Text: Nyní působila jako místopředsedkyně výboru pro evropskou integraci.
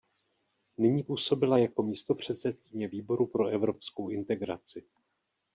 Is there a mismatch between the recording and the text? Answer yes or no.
no